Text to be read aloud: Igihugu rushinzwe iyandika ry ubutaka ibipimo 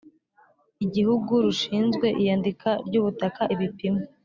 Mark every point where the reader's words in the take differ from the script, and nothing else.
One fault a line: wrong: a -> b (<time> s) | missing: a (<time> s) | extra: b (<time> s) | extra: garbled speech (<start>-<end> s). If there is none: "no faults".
no faults